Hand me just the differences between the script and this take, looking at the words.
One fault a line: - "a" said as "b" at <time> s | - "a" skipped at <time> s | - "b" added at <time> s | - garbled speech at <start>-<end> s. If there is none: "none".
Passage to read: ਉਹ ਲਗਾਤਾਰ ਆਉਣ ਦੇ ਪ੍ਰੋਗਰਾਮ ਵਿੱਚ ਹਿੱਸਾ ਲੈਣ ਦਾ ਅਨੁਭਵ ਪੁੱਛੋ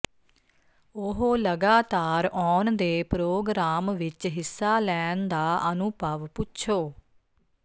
none